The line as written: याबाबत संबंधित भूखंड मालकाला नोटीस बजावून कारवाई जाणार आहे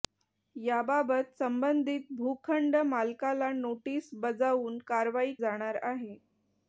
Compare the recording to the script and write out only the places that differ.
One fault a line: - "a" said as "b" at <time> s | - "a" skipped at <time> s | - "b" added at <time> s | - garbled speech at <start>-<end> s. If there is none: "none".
none